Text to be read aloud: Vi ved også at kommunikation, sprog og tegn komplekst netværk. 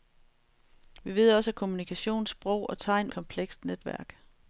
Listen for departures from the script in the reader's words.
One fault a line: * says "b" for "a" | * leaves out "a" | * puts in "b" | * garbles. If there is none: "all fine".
all fine